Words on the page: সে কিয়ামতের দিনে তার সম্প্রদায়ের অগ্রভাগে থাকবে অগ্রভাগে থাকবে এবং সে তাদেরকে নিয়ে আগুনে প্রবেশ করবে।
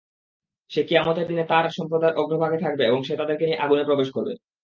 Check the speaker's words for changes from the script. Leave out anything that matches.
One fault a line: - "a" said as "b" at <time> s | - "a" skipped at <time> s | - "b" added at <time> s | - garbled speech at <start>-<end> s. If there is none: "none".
- "অগ্রভাগে থাকবে" skipped at 2.8 s